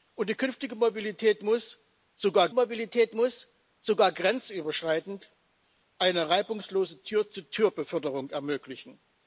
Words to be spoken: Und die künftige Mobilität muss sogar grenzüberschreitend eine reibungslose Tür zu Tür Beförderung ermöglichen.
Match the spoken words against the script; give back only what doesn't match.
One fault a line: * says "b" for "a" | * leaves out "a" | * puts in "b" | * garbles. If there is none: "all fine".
* puts in "Mobilität muss sogar"